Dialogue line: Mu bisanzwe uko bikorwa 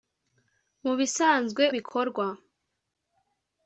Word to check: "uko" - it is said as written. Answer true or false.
false